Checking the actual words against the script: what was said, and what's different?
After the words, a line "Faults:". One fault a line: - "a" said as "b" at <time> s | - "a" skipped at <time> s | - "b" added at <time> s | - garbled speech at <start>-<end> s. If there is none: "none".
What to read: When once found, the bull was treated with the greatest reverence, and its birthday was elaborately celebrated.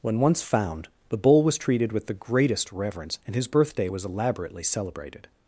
When once found, the bull was treated with the greatest reverence, and his birthday was elaborately celebrated.
Faults:
- "its" said as "his" at 3.4 s